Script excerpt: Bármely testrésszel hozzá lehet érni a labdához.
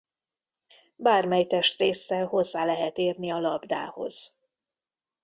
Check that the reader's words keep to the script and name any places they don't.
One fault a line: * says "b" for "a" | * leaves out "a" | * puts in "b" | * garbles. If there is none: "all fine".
all fine